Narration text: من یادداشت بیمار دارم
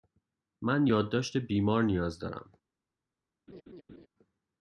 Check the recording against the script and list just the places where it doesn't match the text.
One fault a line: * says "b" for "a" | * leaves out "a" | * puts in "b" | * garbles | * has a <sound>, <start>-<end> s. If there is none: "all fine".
* puts in "نیاز"
* has a laugh, 3.5-4.1 s